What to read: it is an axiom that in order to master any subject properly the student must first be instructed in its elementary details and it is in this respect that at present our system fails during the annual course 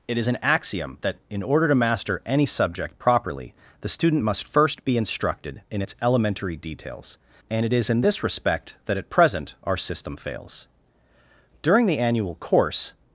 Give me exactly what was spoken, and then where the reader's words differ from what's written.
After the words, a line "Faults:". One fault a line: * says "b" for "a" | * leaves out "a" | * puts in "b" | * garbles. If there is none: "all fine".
it is an axiom that in order to master any subject properly the student must first be instructed in its elementary details and it is in this respect that at present our system fails during the annual course
Faults:
all fine